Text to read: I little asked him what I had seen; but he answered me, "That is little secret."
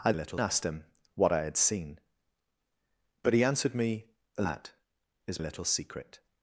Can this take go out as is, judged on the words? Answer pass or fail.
pass